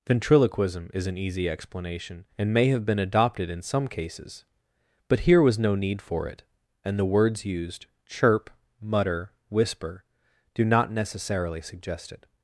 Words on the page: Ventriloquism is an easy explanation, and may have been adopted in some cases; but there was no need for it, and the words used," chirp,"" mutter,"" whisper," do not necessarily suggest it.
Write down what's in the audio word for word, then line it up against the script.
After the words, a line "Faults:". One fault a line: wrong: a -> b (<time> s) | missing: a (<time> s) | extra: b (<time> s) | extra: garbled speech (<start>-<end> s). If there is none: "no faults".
Ventriloquism is an easy explanation, and may have been adopted in some cases; but here was no need for it, and the words used," chirp,"" mutter,"" whisper," do not necessarily suggest it.
Faults:
wrong: there -> here (5.2 s)